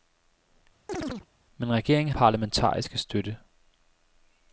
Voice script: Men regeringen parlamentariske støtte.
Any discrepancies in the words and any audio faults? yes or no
yes